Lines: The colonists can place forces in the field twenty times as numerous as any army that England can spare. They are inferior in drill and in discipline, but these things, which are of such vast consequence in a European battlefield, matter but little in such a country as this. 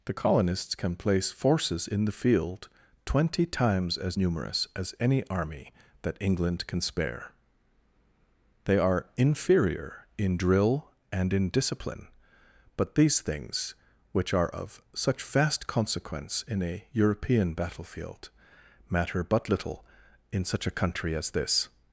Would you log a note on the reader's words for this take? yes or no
no